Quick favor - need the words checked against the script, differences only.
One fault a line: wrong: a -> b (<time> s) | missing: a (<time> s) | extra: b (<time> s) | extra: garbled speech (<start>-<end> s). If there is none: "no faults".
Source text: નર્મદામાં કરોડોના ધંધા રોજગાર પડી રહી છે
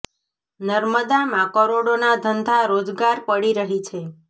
no faults